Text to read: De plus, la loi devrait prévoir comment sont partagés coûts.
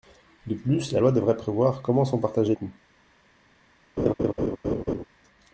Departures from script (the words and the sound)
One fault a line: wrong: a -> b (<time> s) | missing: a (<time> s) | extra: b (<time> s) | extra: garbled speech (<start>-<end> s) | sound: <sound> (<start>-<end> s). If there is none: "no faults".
sound: laugh (4.0-5.0 s)